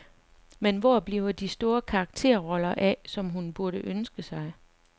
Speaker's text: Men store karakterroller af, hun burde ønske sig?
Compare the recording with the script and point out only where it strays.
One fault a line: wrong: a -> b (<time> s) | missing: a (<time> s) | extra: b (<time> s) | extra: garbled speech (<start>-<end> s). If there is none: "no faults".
extra: hvor bliver de (0.8 s)
extra: som (3.0 s)